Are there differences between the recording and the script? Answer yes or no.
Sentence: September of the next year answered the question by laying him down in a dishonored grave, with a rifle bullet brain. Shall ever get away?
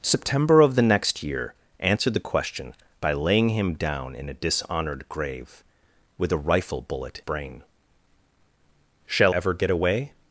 no